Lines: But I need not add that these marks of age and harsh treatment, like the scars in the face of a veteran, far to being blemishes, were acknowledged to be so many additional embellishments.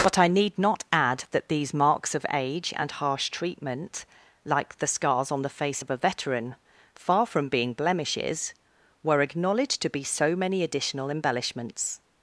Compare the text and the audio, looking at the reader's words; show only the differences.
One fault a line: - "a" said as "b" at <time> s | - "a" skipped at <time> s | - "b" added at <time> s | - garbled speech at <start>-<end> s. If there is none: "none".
- "in" said as "on" at 5.3 s
- "to" said as "from" at 7.3 s